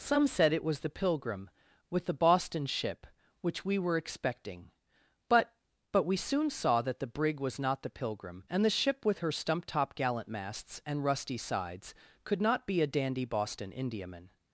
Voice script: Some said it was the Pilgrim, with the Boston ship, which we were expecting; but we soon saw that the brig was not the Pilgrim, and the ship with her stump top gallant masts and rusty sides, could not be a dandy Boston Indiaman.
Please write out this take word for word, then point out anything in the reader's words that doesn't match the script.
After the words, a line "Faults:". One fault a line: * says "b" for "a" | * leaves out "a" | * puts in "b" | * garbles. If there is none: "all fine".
Some said it was the Pilgrim, with the Boston ship, which we were expecting; but but we soon saw that the brig was not the Pilgrim, and the ship with her stump top gallant masts and rusty sides, could not be a dandy Boston Indiaman.
Faults:
* puts in "but"